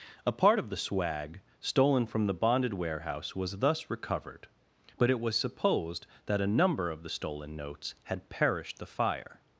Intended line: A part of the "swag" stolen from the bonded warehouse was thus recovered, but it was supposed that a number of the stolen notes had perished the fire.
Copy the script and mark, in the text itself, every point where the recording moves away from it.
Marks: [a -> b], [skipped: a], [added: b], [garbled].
A part of the "swag" stolen from the bonded warehouse was thus recovered, but it was supposed that a number of the stolen notes had perished the fire.